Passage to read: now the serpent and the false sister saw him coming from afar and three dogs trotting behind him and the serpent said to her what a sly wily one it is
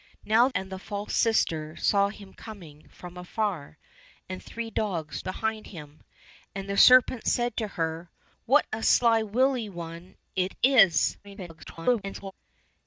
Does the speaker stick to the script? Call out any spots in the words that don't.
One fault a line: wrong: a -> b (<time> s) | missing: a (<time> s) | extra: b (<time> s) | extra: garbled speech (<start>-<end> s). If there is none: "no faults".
missing: the serpent (0.5 s)
missing: trotting (5.2 s)
extra: garbled speech (11.2-12.3 s)